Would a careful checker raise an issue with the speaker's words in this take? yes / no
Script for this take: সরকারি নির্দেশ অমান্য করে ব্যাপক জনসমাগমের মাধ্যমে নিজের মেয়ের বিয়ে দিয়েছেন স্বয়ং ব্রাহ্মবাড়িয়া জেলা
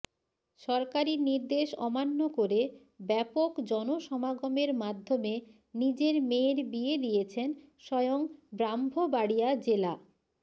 no